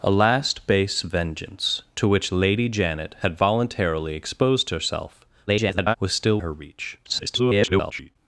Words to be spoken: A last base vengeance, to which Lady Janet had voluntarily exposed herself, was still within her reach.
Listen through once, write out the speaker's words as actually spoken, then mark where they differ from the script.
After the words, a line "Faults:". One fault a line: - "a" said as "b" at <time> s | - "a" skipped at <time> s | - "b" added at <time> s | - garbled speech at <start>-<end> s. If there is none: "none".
A last base vengeance, to which Lady Janet had voluntarily exposed herself, [garbled] was still her reach. [garbled]
Faults:
- garbled speech at 5.5-6.0 s
- "within" skipped at 6.4 s
- garbled speech at 7.0-8.2 s